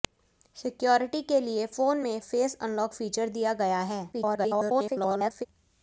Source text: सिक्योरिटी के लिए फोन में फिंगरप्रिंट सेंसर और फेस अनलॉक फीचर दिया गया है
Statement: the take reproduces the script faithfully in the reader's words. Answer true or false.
false